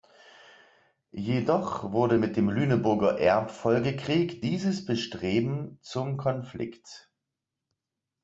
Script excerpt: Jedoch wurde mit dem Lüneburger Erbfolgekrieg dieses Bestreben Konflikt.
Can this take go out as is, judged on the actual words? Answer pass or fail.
fail